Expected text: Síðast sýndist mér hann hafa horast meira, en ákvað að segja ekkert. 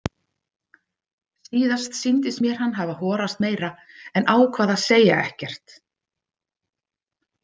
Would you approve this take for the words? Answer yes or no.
yes